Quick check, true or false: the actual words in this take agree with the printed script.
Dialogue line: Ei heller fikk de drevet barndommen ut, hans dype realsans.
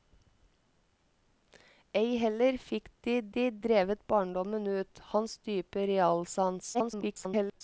false